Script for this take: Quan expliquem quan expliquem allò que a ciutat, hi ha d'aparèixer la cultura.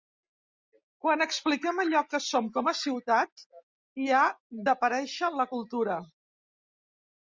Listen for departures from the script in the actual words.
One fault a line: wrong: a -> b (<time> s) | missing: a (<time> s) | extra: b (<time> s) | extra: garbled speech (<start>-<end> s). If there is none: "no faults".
wrong: quan expliquem allò que -> allò que som com (1.8 s)